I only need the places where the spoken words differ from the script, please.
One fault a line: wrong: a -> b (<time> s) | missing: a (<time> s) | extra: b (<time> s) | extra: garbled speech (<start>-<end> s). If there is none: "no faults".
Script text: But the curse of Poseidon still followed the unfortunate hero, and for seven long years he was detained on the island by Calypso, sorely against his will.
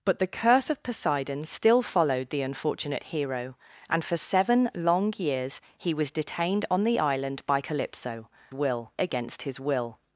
wrong: sorely -> will (8.5 s)